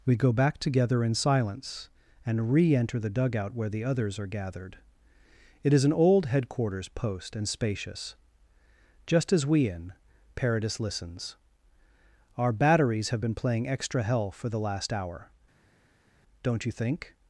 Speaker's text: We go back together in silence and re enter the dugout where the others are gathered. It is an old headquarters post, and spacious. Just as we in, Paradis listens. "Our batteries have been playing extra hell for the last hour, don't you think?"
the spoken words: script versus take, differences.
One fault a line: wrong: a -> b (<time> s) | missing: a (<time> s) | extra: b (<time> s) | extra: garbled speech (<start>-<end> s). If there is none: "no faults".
no faults